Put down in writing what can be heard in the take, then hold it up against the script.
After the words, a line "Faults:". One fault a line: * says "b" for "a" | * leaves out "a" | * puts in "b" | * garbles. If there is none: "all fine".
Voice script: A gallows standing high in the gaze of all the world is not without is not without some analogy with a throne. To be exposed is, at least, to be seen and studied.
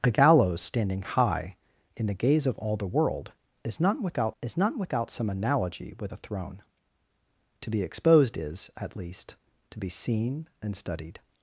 A gallows standing high in the gaze of all the world is not without is not without some analogy with a throne. To be exposed is, at least, to be seen and studied.
Faults:
all fine